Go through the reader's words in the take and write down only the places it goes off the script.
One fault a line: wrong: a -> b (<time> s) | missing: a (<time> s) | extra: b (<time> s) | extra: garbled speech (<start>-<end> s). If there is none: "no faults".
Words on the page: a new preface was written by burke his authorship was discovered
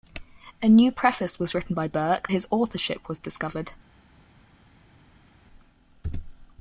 no faults